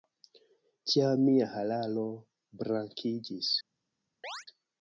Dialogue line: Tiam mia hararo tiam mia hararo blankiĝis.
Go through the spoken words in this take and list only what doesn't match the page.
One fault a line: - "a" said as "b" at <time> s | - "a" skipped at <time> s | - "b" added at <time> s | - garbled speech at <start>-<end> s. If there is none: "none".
- "tiam mia hararo" skipped at 2.1 s